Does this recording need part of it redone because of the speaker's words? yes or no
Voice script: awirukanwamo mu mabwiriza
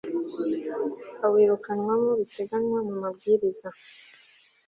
yes